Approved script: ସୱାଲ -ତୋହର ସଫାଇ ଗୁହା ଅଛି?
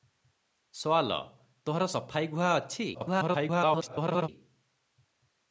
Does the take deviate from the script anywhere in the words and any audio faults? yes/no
yes